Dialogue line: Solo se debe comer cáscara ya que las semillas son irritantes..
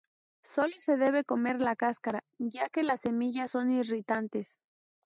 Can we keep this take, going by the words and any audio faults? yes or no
no